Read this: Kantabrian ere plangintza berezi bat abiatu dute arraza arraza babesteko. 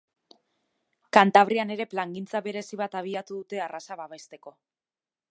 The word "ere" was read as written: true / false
true